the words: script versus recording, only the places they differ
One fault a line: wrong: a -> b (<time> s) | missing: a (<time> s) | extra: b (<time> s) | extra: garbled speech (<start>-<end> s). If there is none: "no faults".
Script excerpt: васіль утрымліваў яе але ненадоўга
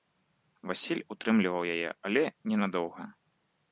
no faults